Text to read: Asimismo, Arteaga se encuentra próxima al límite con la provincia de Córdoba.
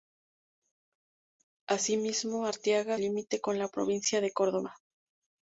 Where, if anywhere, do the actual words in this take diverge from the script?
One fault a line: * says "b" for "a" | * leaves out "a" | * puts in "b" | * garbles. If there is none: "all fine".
* leaves out "se encuentra próxima"